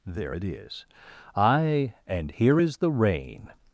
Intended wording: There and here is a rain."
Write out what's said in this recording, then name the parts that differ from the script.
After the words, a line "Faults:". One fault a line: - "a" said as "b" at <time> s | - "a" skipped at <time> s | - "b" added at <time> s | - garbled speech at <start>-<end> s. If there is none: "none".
There it is!" "Aye, and here is the rain."
Faults:
- "it is Aye" added at 0.3 s
- "a" said as "the" at 2.8 s